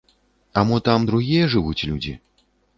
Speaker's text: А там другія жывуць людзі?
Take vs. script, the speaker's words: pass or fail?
fail